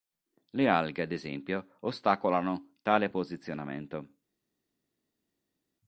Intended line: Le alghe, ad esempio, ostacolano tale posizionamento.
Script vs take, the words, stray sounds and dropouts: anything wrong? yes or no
no